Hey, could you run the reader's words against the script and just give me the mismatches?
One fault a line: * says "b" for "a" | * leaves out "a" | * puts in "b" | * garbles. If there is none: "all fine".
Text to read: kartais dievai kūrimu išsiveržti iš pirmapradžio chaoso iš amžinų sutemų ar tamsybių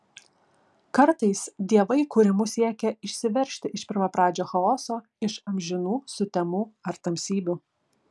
* puts in "siekia"